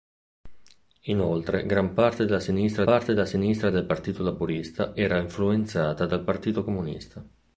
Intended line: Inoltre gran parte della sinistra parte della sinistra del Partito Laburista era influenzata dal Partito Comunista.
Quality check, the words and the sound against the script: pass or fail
pass